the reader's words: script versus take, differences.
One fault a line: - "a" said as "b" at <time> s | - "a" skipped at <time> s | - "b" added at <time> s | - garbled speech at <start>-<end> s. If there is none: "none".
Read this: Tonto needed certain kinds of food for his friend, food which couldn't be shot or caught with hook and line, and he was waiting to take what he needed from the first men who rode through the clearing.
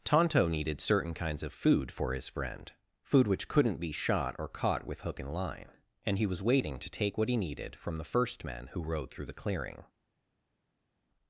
none